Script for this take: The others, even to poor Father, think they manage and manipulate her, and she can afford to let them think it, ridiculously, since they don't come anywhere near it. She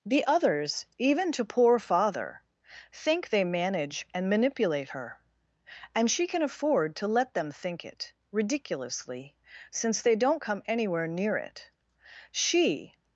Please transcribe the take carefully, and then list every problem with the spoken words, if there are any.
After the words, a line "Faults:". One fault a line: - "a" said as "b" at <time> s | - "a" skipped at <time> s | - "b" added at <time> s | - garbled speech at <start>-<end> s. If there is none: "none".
The others, even to poor Father, think they manage and manipulate her, and she can afford to let them think it, ridiculously, since they don't come anywhere near it. She
Faults:
none